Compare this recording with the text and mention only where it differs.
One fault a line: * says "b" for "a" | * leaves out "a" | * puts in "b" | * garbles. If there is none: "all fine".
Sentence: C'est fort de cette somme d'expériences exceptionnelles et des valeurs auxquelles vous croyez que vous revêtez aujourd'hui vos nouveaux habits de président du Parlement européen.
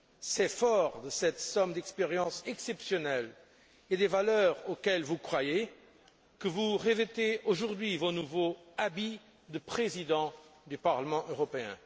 all fine